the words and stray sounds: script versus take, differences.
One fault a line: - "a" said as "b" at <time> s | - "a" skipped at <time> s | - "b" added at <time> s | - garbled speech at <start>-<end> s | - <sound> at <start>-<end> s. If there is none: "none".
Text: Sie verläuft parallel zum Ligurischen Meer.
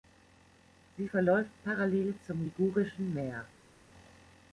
none